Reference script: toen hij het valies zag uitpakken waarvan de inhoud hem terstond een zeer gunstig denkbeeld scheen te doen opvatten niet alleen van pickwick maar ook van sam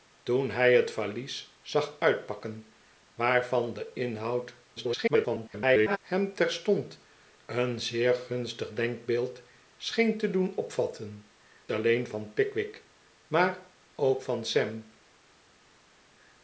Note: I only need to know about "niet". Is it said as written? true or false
false